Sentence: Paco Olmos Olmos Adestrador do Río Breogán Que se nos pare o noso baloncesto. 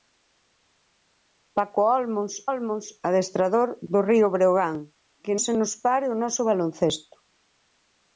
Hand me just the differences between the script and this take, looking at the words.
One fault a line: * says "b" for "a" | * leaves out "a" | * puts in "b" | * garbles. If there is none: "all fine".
all fine